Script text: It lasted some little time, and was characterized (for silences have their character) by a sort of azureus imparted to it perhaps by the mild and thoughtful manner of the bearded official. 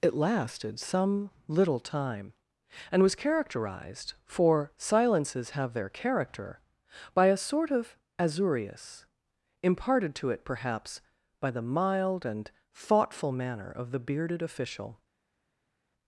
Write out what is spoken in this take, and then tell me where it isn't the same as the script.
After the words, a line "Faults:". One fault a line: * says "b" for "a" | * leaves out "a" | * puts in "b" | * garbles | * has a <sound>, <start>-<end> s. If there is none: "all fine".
It lasted some little time, and was characterized (for silences have their character) by a sort of azureus imparted to it perhaps by the mild and thoughtful manner of the bearded official.
Faults:
all fine